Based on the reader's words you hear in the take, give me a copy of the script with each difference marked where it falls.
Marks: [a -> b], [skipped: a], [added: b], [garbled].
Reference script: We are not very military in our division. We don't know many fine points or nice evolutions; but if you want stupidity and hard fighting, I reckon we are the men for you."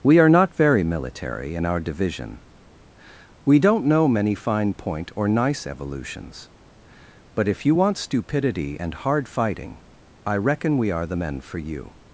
We are not very military in our division. We don't know many fine [points -> point] or nice evolutions; but if you want stupidity and hard fighting, I reckon we are the men for you."